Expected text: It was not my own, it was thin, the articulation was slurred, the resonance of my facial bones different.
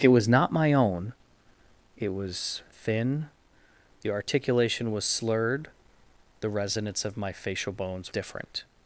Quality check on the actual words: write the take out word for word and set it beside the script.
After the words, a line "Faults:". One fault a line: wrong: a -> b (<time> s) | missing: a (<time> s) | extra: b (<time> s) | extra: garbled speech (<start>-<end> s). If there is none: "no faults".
It was not my own, it was thin, the articulation was slurred, the resonance of my facial bones different.
Faults:
no faults